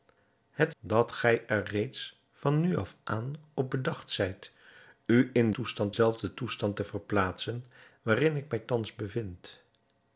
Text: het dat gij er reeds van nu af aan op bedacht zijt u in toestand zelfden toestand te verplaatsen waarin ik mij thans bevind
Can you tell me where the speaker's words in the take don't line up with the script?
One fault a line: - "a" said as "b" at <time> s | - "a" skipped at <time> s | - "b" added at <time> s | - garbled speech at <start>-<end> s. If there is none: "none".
none